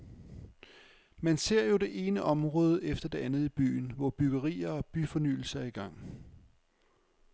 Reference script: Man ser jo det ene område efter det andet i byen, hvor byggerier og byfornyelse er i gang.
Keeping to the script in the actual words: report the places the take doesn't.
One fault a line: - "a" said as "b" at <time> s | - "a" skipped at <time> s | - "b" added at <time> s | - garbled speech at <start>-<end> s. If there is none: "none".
none